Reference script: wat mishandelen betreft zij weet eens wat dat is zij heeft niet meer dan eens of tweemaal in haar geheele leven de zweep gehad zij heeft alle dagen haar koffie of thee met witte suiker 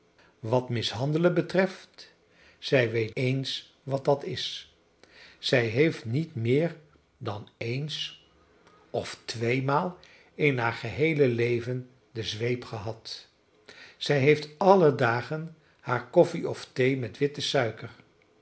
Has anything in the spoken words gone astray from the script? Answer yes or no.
no